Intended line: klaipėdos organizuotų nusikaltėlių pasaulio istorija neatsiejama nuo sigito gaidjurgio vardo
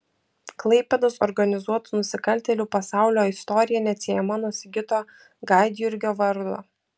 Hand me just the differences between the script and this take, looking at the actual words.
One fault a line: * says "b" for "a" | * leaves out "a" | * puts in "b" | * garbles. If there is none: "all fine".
all fine